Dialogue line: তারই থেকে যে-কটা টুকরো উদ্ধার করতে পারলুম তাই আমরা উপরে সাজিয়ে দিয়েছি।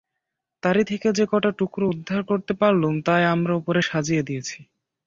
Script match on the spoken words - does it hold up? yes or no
yes